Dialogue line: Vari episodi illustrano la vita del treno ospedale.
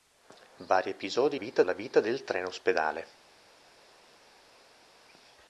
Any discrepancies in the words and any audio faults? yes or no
yes